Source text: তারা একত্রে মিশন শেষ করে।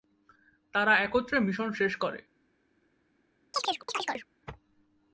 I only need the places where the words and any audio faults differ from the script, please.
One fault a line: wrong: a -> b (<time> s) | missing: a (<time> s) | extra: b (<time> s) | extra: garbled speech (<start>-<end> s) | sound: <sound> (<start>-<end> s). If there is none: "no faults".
sound: chirp (3.5-4.3 s)